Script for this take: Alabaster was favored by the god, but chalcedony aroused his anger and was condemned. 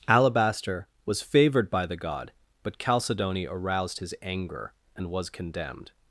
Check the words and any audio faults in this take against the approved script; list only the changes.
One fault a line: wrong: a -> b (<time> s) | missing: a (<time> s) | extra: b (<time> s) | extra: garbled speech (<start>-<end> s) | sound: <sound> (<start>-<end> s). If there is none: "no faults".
no faults